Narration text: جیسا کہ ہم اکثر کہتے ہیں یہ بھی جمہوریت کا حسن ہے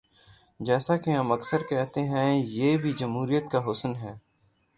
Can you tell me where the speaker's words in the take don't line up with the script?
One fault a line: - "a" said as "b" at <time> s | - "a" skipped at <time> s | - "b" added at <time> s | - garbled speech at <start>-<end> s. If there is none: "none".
none